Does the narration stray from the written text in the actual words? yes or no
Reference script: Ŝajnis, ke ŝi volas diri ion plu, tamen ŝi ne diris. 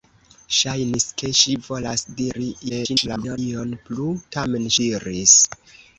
yes